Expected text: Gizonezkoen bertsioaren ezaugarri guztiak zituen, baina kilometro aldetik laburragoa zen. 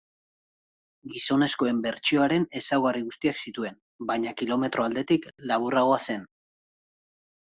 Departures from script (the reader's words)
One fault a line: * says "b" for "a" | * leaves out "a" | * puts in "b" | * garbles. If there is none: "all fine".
all fine